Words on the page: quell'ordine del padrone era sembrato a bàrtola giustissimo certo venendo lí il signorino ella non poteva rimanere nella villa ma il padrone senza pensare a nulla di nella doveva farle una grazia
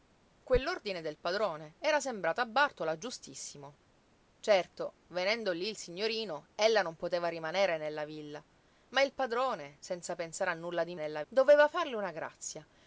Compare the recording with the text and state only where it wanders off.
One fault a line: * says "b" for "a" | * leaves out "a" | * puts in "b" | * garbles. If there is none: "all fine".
all fine